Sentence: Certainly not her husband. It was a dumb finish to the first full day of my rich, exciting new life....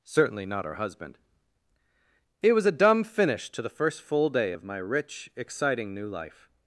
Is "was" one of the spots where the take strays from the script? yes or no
no